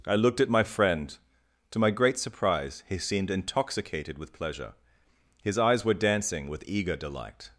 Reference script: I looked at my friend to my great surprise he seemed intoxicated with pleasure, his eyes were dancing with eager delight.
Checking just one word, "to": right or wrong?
right